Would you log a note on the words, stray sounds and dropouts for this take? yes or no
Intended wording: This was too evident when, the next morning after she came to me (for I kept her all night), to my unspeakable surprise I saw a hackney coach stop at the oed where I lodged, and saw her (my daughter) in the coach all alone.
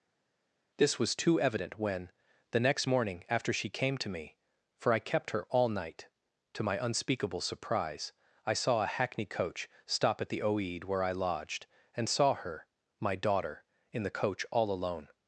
no